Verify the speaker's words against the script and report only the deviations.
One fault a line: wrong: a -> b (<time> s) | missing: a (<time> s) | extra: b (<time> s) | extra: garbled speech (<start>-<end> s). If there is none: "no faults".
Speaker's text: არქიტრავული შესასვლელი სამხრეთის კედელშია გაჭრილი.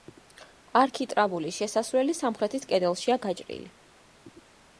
no faults